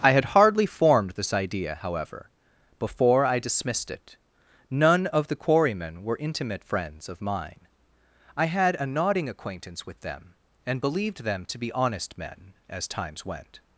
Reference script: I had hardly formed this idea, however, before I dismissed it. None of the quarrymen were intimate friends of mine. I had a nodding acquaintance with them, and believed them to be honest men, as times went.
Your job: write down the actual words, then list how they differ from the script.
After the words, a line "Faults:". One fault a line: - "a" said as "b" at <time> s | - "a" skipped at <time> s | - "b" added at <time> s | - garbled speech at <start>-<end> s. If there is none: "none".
I had hardly formed this idea, however, before I dismissed it. None of the quarrymen were intimate friends of mine. I had a nodding acquaintance with them, and believed them to be honest men, as times went.
Faults:
none